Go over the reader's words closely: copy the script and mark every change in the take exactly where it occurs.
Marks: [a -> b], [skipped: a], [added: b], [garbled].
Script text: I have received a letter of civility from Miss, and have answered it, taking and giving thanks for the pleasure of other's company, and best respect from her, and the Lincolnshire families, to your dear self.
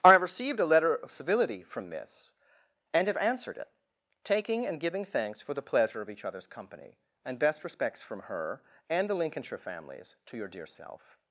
I have received a letter of civility from Miss, and have answered it, taking and giving thanks for the pleasure of [added: each] other's company, and best [respect -> respects] from her, and the Lincolnshire families, to your dear self.